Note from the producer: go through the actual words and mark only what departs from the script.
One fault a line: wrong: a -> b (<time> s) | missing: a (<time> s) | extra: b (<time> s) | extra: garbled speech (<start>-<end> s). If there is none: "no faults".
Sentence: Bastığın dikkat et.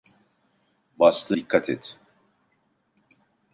no faults